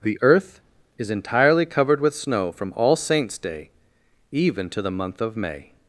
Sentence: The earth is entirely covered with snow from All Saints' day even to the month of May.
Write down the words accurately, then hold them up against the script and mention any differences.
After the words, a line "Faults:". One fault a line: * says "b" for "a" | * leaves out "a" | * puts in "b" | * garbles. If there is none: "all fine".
The earth is entirely covered with snow from All Saints' day even to the month of May.
Faults:
all fine